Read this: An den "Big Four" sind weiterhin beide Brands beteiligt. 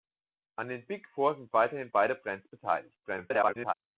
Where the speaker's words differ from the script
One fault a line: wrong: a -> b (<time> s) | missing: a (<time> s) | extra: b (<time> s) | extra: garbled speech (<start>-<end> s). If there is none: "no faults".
extra: garbled speech (3.0-3.7 s)